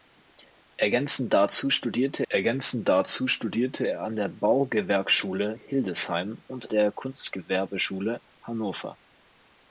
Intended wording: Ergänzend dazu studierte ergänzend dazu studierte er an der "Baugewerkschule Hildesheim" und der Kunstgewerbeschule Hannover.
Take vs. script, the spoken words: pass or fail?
pass